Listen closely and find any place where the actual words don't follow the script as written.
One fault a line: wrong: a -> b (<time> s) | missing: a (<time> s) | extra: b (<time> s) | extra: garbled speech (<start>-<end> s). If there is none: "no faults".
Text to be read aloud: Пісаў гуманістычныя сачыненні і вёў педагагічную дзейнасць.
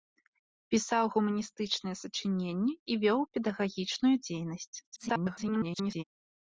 extra: garbled speech (4.8-6.0 s)